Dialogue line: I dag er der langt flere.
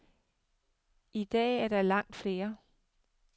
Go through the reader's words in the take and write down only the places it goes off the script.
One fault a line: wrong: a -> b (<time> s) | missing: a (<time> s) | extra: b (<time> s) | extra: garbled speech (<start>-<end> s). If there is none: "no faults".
no faults